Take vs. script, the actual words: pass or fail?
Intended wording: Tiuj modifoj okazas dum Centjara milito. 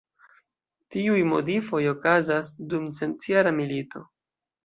pass